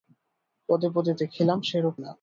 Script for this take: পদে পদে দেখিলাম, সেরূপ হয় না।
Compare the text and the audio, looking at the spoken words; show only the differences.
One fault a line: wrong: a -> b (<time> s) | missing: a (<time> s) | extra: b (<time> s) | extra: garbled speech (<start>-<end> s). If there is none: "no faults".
missing: হয় (1.9 s)